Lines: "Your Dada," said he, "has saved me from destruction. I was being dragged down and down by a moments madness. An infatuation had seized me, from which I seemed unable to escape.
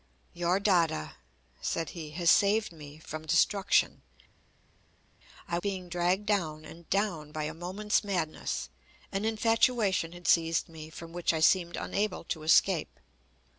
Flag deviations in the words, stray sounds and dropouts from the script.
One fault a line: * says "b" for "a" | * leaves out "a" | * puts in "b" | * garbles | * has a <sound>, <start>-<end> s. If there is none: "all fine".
* leaves out "was"